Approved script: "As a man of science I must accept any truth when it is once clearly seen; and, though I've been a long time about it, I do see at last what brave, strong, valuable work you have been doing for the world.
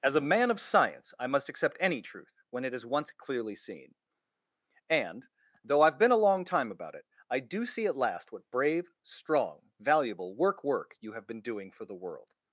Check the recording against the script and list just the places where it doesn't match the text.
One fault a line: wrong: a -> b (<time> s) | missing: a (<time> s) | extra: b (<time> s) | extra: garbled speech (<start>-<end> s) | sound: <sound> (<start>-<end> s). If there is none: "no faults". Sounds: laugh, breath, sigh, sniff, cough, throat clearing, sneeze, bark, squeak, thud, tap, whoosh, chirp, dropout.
extra: work (10.6 s)